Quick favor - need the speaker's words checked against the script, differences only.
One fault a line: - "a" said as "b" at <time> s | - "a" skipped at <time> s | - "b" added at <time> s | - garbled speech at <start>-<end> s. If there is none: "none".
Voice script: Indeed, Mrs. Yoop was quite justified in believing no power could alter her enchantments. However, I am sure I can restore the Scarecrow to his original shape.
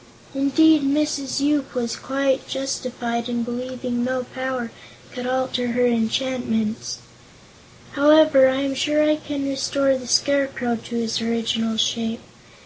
none